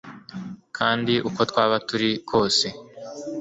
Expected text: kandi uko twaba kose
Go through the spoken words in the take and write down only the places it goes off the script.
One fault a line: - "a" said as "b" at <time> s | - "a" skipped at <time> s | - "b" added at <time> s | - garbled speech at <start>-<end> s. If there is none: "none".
- "turi" added at 1.9 s